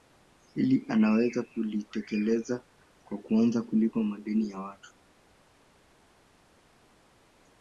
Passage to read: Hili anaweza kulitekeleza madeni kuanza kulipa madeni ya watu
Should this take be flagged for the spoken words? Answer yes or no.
yes